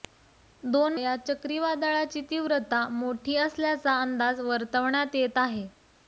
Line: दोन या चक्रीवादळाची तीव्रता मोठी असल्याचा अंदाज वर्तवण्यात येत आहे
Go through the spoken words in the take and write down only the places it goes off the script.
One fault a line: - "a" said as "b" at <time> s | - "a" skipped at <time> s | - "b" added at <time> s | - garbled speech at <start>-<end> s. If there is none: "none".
none